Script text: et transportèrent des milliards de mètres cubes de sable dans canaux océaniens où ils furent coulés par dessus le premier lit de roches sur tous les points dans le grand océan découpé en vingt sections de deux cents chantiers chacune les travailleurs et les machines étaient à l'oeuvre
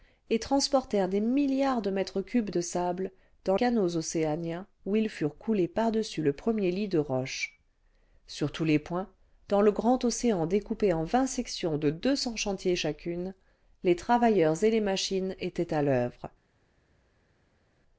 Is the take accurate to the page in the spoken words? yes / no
yes